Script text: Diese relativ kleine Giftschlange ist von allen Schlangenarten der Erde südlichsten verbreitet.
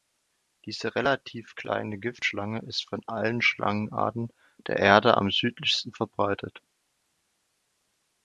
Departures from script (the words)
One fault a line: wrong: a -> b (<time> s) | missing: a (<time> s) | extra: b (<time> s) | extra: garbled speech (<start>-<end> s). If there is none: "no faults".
extra: am (5.2 s)